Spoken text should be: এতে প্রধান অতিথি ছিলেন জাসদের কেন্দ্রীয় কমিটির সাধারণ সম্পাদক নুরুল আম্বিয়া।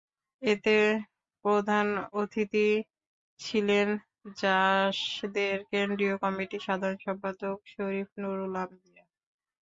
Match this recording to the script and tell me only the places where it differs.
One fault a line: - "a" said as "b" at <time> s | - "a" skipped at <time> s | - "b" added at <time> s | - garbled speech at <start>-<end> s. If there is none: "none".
- "শরীফ" added at 7.7 s